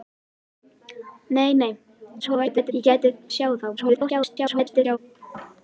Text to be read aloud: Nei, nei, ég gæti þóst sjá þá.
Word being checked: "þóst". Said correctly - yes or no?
no